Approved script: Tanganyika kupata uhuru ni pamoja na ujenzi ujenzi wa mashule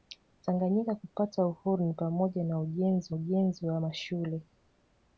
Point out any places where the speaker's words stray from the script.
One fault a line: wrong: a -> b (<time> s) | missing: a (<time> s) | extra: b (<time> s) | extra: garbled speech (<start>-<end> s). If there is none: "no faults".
no faults